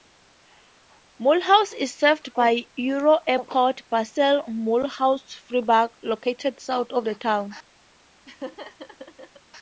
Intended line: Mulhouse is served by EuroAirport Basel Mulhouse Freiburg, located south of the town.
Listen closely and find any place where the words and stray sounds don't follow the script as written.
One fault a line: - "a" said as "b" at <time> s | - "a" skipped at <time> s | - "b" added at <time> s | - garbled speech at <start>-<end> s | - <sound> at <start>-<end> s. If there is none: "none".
- laugh at 8.3-9.4 s